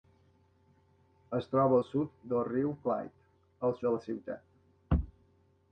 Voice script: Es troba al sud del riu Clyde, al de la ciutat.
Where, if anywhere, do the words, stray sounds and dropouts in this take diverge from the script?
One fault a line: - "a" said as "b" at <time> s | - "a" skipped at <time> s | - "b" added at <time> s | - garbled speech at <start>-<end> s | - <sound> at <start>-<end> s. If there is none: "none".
none